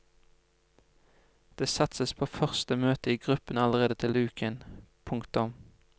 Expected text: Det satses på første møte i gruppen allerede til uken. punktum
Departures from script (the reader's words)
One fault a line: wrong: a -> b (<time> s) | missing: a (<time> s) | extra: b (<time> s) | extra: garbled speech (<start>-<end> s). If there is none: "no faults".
no faults